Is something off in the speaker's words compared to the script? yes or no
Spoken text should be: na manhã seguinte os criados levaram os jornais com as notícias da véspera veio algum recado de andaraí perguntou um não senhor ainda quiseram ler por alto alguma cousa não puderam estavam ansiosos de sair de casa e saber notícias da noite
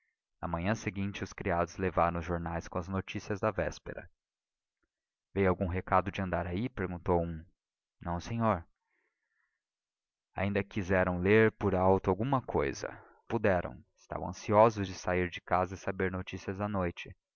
yes